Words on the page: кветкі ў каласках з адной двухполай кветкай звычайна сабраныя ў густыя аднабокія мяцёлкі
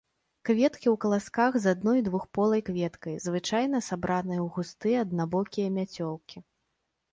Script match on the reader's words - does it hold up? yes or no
yes